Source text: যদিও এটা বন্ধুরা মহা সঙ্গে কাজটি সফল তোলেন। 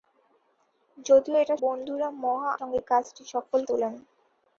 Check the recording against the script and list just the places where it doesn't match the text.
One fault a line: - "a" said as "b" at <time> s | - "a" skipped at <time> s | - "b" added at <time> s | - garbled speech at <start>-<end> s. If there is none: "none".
none